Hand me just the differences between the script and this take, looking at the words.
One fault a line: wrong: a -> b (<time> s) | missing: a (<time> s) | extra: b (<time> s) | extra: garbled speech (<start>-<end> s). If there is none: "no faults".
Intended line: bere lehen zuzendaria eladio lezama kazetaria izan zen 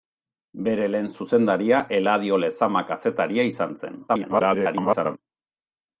extra: garbled speech (4.1-5.2 s)